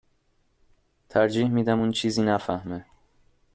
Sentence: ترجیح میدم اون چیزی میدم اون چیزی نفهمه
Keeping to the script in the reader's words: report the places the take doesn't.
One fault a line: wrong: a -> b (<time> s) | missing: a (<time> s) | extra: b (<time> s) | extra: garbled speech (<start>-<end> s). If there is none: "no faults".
missing: میدم اون چیزی (2.2 s)